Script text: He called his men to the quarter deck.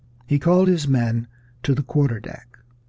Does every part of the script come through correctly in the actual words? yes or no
yes